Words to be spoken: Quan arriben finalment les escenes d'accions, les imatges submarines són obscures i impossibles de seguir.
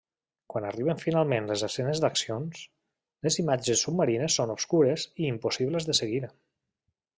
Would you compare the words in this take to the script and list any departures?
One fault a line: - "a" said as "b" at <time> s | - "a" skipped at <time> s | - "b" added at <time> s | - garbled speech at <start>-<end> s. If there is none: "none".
none